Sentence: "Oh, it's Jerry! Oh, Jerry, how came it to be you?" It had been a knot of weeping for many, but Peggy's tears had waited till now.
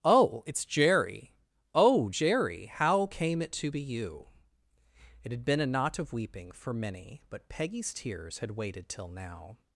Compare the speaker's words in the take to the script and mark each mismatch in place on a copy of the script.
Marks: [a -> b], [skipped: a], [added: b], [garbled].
"Oh, it's Jerry! Oh, Jerry, how came it to be you?" It had been a knot of weeping for many, but Peggy's tears had waited till now.